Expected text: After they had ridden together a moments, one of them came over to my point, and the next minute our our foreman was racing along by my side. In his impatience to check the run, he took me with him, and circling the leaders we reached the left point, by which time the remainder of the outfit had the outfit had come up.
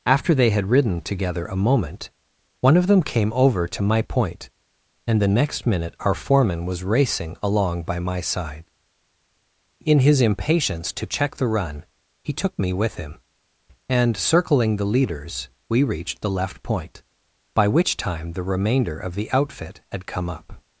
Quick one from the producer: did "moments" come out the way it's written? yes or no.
no